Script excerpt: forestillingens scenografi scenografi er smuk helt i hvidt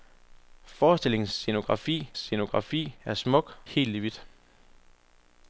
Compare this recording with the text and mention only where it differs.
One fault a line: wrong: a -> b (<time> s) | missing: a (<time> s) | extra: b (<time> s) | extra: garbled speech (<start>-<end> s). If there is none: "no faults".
no faults